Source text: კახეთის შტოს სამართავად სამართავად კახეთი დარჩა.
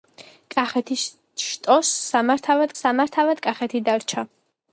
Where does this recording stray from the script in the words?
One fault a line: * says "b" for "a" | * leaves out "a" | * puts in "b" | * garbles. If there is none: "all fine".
all fine